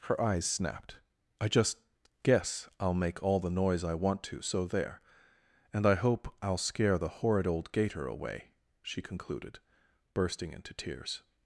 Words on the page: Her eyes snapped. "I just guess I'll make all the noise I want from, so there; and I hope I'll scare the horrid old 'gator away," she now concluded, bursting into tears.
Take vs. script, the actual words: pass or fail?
fail